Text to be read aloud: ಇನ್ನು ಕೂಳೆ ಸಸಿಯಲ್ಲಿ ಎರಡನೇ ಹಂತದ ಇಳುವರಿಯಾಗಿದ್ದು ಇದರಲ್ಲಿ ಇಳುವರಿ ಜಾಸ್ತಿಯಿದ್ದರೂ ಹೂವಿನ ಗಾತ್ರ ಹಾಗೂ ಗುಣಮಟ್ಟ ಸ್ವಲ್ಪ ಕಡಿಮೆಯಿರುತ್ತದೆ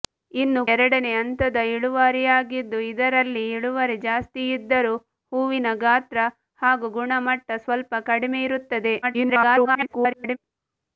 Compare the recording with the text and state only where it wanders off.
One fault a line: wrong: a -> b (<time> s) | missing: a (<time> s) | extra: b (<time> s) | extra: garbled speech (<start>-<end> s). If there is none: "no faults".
missing: ಕೂಳೆ ಸಸಿಯಲ್ಲಿ (0.6 s)
extra: garbled speech (9.0-10.4 s)